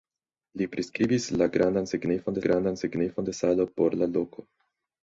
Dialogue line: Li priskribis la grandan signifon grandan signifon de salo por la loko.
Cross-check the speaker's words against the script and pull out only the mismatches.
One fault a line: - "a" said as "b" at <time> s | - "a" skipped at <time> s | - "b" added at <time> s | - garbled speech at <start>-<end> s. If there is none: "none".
none